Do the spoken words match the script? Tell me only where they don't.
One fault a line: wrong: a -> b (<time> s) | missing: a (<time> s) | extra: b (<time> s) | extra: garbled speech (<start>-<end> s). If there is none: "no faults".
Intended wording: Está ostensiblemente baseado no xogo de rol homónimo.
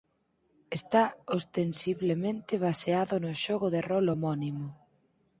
no faults